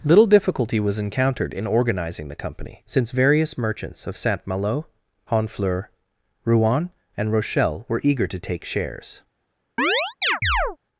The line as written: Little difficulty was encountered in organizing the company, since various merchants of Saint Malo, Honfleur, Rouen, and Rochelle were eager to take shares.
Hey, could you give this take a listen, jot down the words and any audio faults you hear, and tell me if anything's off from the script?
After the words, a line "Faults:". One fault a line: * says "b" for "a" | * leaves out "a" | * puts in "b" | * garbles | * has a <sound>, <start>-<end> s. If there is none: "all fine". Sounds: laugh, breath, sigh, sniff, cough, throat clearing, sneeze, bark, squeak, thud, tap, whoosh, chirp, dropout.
Little difficulty was encountered in organizing the company, since various merchants of Saint Malo, Honfleur, Rouen, and Rochelle were eager to take shares.
Faults:
* has a chirp, 9.8-10.8 s